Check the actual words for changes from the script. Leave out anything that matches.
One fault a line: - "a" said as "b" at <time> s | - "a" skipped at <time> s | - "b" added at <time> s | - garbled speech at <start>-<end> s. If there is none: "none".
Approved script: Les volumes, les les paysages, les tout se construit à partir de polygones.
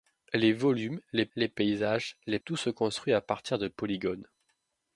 none